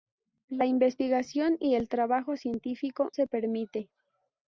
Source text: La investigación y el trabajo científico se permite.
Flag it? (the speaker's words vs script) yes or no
no